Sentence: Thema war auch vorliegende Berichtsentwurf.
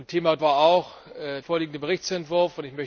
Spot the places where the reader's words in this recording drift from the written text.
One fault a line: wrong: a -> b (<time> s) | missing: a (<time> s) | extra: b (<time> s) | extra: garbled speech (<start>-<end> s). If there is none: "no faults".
no faults